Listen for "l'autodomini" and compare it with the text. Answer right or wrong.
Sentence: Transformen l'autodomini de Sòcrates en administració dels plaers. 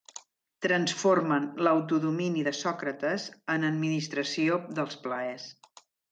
right